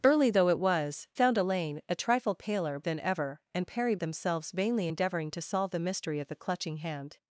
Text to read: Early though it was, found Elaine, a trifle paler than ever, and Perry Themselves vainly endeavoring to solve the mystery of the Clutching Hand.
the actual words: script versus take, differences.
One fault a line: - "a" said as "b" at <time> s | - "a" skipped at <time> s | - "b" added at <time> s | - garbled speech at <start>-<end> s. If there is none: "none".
none